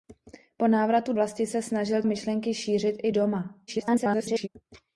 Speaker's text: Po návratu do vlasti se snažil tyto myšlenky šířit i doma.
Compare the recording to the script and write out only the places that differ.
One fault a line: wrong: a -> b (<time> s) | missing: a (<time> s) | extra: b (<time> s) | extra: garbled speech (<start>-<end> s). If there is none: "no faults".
missing: do (1.1 s)
missing: tyto (2.0 s)
extra: garbled speech (3.7-4.5 s)